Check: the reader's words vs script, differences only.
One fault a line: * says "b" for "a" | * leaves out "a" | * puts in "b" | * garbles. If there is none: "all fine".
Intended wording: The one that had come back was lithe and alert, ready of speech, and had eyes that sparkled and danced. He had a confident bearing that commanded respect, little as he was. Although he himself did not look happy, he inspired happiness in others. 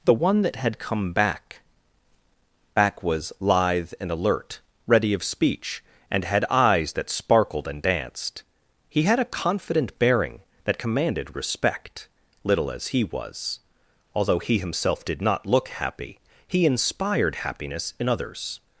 * puts in "back"